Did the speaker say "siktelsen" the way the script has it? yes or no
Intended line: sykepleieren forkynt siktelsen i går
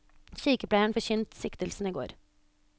yes